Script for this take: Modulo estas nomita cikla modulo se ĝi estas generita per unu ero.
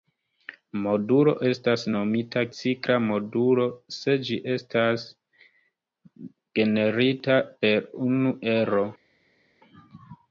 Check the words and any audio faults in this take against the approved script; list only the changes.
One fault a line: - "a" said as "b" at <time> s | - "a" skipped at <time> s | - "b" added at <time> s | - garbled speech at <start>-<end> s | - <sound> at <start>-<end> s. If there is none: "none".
none